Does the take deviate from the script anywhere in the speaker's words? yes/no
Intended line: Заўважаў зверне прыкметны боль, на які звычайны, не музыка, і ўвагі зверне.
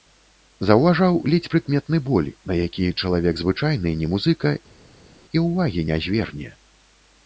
yes